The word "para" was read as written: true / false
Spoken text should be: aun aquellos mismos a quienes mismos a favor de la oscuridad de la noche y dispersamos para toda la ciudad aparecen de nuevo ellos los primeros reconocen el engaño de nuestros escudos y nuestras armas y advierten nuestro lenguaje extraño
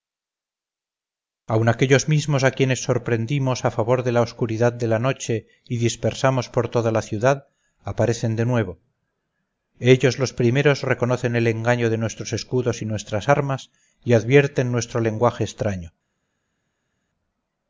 false